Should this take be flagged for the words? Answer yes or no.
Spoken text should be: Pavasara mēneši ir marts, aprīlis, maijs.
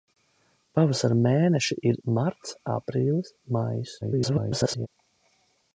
yes